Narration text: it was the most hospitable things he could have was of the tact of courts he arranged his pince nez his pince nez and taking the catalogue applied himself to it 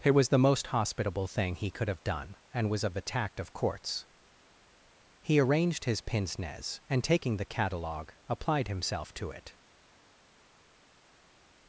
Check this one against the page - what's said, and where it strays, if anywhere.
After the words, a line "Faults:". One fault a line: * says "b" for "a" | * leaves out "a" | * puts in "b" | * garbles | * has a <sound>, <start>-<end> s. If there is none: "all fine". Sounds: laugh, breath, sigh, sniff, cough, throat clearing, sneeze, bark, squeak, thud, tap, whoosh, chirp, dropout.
it was the most hospitable thing he could have done and was of the tact of courts he arranged his pince nez and taking the catalogue applied himself to it
Faults:
* says "thing" for "things"
* puts in "done and"
* leaves out "his pince nez"